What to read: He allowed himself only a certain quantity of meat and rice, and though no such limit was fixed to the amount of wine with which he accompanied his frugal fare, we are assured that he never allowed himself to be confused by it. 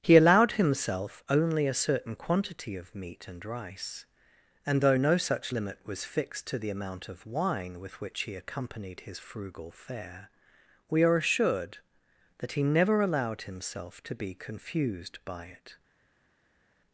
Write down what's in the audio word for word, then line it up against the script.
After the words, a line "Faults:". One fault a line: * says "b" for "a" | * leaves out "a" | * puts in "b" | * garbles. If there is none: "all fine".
He allowed himself only a certain quantity of meat and rice, and though no such limit was fixed to the amount of wine with which he accompanied his frugal fare, we are assured that he never allowed himself to be confused by it.
Faults:
all fine